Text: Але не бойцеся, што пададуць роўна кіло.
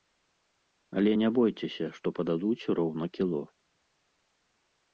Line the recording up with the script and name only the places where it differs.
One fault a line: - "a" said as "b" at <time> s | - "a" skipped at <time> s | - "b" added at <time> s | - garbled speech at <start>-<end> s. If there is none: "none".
none